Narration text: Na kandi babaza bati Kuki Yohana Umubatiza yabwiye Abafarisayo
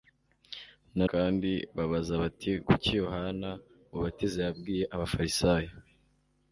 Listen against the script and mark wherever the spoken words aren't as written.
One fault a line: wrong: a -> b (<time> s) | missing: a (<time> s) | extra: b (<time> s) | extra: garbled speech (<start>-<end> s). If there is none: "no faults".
no faults